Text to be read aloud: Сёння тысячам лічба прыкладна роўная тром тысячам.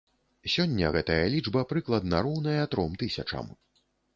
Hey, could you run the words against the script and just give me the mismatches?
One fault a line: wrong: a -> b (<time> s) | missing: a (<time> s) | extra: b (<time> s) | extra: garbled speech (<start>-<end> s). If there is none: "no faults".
wrong: тысячам -> гэтая (0.9 s)